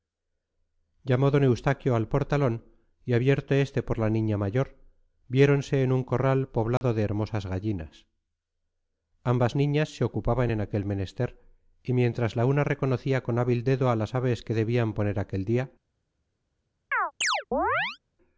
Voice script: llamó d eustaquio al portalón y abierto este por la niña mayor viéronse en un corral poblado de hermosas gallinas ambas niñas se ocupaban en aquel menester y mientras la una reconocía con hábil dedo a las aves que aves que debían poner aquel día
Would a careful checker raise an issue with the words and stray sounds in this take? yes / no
yes